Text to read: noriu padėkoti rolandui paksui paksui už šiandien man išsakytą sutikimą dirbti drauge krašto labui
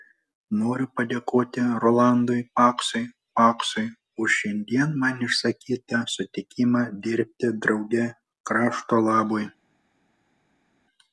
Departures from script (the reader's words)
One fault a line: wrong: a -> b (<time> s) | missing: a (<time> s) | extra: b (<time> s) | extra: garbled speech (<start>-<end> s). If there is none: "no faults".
no faults